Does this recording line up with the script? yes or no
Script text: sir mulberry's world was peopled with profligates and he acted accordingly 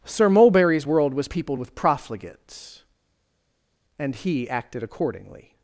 yes